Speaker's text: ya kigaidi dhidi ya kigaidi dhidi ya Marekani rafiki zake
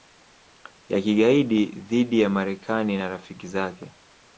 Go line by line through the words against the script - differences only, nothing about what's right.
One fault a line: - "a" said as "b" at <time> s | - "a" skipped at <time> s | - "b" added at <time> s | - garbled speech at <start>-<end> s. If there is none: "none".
- "kigaidi dhidi ya Marekani" said as "Marekani na" at 2.3 s